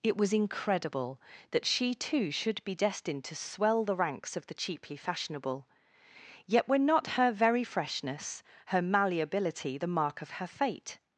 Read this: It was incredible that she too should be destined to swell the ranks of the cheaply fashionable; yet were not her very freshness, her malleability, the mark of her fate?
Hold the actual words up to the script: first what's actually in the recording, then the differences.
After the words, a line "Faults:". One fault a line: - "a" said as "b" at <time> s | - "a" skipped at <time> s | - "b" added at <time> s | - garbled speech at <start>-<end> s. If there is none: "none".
It was incredible that she too should be destined to swell the ranks of the cheaply fashionable; yet were not her very freshness, her malleability, the mark of her fate?
Faults:
none